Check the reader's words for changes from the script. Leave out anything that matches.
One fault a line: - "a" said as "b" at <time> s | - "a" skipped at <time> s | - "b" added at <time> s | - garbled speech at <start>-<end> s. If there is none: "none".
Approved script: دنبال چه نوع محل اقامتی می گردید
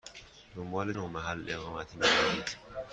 - "چه" skipped at 0.9 s